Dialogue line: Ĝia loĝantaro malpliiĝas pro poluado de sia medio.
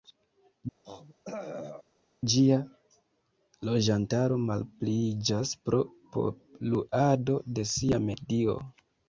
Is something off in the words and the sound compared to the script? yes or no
yes